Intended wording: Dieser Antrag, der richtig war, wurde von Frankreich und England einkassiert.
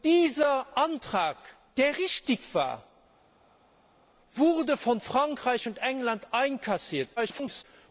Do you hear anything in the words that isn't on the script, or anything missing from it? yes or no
yes